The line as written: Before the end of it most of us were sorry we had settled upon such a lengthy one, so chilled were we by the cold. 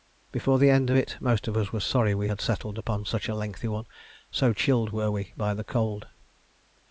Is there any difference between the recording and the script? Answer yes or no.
no